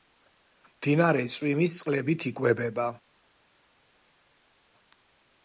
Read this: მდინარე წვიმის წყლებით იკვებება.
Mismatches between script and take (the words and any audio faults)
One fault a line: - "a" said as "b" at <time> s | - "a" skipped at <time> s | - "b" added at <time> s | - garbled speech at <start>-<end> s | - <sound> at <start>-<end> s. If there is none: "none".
none